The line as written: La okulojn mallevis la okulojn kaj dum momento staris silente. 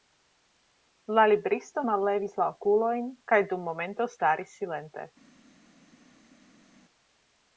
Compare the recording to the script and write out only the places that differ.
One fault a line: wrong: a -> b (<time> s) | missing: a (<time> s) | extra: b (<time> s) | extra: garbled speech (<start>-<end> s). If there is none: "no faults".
wrong: okulojn -> libristo (1.3 s)